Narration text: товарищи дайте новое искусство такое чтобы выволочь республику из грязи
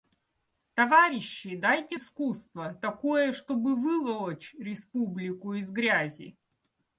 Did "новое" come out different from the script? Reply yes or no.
yes